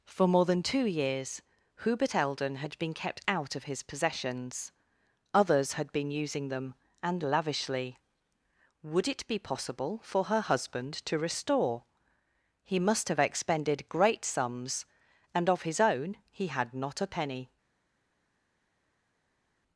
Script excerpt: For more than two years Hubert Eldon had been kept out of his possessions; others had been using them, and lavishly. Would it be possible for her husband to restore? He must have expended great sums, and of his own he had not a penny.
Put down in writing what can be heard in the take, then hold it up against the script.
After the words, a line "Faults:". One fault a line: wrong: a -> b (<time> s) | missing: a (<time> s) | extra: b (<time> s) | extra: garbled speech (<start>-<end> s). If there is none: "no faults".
For more than two years Hubert Eldon had been kept out of his possessions; others had been using them, and lavishly. Would it be possible for her husband to restore? He must have expended great sums, and of his own he had not a penny.
Faults:
no faults